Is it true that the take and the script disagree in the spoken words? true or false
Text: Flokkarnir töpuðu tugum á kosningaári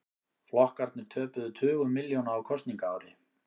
true